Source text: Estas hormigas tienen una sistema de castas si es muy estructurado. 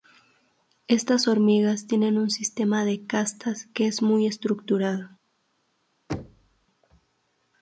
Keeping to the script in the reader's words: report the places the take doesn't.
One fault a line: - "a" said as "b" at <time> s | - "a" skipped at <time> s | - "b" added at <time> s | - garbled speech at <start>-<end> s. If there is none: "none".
- "una" said as "un" at 2.2 s
- "si" said as "que" at 3.7 s